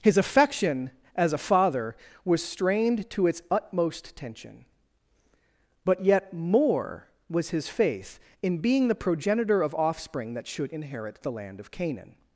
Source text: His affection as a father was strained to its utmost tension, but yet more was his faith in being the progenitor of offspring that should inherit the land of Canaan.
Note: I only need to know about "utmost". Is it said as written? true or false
true